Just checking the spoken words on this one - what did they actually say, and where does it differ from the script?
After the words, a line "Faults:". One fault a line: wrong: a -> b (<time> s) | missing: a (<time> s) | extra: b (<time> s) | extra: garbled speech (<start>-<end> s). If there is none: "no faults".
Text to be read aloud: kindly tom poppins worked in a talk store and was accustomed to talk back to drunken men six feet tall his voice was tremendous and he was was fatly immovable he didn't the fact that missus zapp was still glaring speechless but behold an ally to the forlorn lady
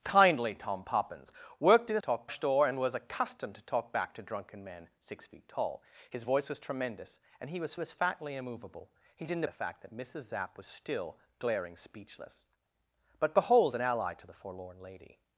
kindly tom poppins worked in a talk store and was accustomed to talk back to drunken men six feet tall his voice was tremendous and he was was fatly immovable he didn't the fact that missus zapp was still glaring speechless but behold an ally to the forlorn lady
Faults:
no faults